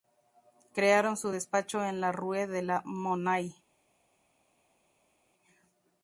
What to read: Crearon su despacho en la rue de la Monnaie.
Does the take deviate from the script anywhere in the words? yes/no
no